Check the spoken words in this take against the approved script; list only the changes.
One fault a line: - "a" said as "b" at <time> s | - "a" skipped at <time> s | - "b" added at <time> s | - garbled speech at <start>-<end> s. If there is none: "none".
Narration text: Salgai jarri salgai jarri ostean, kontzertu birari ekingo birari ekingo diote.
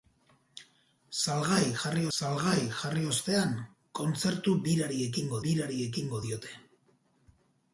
none